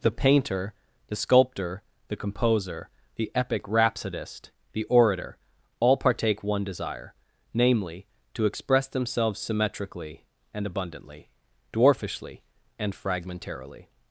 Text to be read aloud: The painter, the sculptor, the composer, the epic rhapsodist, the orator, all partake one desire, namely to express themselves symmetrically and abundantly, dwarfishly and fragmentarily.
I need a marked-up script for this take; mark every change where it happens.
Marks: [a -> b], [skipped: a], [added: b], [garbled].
The painter, the sculptor, the composer, the epic rhapsodist, the orator, all partake one desire, namely to express themselves symmetrically and abundantly, dwarfishly and fragmentarily.